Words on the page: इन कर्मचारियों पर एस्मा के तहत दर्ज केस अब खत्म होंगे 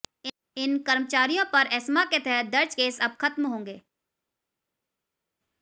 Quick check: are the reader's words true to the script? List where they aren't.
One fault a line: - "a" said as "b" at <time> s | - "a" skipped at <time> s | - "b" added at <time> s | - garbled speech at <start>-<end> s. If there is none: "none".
none